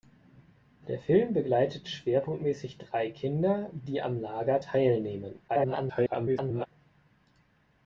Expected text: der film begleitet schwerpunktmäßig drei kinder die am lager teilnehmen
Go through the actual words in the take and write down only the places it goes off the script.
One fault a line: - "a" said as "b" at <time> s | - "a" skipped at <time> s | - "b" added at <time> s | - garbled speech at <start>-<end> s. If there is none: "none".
- garbled speech at 5.5-6.7 s